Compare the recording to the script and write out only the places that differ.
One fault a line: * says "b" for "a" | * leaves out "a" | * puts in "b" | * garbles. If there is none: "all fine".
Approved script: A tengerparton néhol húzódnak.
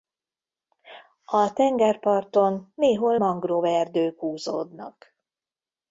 * puts in "mangroveerdők"